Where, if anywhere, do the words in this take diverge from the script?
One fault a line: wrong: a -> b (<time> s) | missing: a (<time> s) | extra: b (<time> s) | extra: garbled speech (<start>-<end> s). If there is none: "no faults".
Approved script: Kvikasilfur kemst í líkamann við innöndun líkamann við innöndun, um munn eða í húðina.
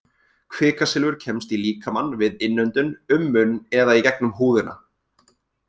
missing: líkamann við innöndun (3.0 s)
extra: gegnum (4.1 s)